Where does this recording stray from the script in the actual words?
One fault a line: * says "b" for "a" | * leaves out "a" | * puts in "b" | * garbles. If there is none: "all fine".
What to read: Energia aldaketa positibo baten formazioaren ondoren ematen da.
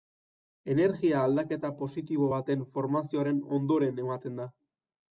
all fine